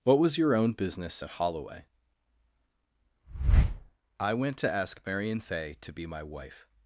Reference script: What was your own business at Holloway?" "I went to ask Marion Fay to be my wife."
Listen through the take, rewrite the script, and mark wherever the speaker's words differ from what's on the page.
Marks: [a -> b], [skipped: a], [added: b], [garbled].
What was your own business at Holloway?" "I went to ask Marion Fay to be my wife."